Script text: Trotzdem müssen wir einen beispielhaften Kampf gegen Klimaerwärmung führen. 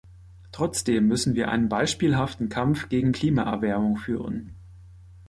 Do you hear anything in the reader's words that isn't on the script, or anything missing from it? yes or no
no